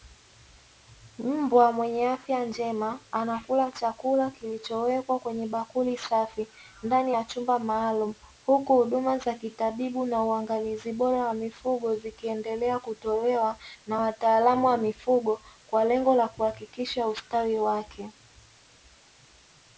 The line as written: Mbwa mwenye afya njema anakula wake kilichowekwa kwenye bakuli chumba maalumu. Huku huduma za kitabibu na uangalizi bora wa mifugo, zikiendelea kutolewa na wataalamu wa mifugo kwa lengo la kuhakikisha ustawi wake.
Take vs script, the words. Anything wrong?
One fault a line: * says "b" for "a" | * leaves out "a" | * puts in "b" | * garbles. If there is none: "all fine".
* says "chakula" for "wake"
* puts in "safi ndani ya"